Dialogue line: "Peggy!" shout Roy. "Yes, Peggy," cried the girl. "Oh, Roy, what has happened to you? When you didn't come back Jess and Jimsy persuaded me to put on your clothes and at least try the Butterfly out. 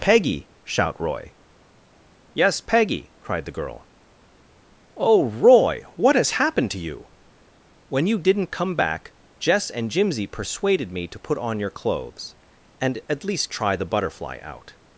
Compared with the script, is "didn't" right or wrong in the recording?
right